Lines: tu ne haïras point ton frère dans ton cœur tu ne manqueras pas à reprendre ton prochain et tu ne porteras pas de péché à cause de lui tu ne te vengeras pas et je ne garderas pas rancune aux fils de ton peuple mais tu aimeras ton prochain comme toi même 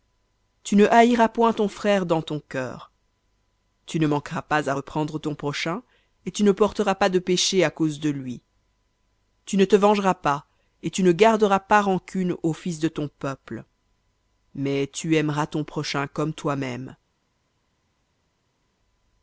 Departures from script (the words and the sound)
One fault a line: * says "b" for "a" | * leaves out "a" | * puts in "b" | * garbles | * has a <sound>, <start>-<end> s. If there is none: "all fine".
* says "tu" for "je"